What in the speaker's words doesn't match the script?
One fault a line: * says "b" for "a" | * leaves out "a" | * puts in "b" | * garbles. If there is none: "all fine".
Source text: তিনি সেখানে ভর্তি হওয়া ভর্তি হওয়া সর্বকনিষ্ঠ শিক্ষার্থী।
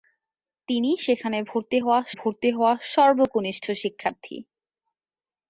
all fine